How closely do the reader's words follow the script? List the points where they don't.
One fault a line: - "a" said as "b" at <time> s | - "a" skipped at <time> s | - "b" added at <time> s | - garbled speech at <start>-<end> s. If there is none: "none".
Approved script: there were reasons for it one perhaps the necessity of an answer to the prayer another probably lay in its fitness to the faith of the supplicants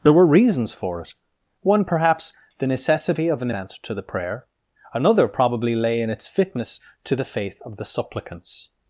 none